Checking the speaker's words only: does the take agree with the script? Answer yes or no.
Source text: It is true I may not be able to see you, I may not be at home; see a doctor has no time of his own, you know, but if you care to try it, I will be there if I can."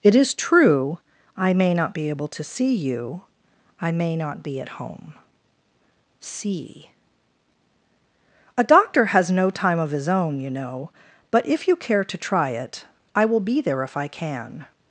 yes